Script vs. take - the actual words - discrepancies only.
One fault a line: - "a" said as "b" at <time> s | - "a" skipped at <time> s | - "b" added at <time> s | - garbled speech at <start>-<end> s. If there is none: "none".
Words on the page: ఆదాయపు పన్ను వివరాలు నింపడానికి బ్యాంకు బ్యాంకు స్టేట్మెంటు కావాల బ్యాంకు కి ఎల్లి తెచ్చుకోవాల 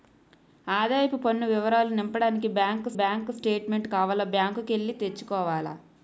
none